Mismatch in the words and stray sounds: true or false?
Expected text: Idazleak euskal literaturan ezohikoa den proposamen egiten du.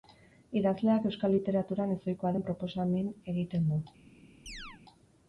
true